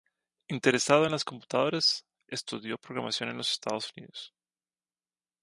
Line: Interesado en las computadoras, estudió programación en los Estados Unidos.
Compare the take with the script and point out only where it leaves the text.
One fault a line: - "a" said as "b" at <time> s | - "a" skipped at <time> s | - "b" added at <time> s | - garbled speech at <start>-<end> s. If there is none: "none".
none